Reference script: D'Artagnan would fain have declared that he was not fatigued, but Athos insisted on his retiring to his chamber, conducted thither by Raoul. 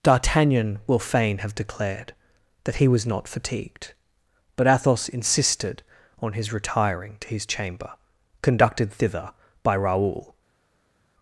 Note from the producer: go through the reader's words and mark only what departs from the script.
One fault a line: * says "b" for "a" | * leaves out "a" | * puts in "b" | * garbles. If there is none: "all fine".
* says "will" for "would"